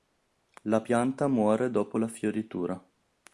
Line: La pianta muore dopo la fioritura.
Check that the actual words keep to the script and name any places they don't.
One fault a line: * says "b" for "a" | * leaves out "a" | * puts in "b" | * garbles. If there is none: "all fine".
all fine